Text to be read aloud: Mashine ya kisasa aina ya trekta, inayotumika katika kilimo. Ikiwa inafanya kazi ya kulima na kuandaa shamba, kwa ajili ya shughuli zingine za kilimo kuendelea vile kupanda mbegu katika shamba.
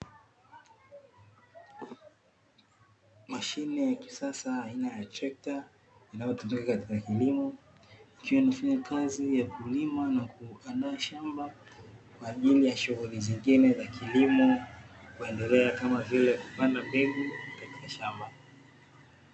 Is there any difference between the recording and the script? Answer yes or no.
yes